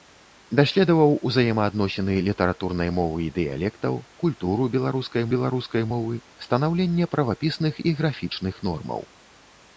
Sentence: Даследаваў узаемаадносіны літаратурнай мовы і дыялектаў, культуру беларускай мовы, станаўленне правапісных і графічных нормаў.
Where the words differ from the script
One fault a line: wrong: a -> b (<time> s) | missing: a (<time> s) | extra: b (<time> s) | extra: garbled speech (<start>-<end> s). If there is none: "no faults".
extra: беларускай (5.3 s)